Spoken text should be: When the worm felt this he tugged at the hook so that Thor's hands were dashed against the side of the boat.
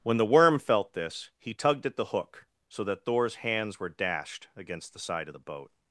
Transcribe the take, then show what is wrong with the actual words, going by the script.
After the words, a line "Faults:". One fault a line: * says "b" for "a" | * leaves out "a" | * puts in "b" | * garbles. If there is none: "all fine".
When the worm felt this he tugged at the hook so that Thor's hands were dashed against the side of the boat.
Faults:
all fine